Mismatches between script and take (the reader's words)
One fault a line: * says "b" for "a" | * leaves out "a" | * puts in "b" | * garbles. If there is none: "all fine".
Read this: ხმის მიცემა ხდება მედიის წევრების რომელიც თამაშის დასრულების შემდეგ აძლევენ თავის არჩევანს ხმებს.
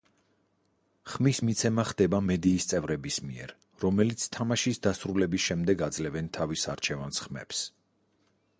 * puts in "მიერ"